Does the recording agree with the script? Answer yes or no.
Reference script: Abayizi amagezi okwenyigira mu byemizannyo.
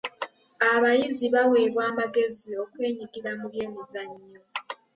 no